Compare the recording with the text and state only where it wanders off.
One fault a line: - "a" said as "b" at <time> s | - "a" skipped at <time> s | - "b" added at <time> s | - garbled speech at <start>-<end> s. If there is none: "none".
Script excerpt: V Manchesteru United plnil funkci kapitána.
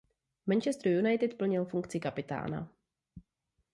none